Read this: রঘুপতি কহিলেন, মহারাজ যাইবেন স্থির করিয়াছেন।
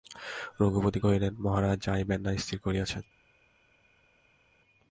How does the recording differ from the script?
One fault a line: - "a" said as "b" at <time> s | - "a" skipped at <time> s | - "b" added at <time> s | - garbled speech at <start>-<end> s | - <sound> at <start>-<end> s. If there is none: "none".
- "না" added at 2.2 s